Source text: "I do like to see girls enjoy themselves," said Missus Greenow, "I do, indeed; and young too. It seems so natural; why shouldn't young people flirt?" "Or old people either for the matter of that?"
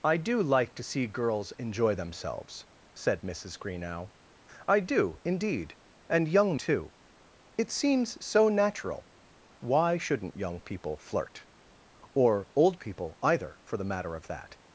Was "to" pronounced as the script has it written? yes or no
yes